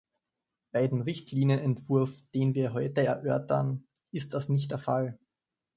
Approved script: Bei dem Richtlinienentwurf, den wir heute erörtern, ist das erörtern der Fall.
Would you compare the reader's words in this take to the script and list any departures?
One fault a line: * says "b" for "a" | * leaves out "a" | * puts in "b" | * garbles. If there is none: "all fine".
* says "nicht" for "erörtern"